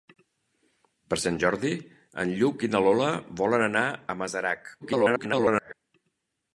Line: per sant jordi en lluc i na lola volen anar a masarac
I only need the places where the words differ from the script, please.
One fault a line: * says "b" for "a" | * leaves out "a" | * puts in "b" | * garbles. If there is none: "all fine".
* garbles